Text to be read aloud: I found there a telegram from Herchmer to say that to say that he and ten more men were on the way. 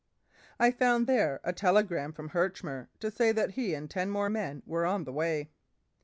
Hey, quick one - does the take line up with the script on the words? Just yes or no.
no